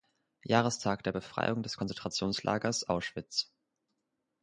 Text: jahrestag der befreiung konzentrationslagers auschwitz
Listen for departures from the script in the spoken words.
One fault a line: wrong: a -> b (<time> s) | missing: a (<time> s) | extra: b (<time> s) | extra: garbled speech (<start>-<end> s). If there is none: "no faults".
extra: des (1.6 s)